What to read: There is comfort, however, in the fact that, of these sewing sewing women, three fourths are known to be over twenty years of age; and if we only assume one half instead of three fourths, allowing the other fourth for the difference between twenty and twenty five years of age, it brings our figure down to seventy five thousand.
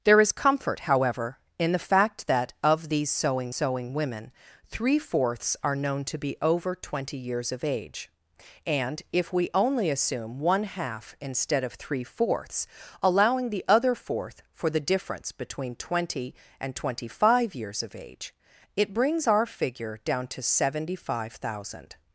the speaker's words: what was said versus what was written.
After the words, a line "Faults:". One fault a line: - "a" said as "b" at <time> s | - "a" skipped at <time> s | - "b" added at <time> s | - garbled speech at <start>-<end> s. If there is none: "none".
There is comfort, however, in the fact that, of these sewing sewing women, three fourths are known to be over twenty years of age; and if we only assume one half instead of three fourths, allowing the other fourth for the difference between twenty and twenty five years of age, it brings our figure down to seventy five thousand.
Faults:
none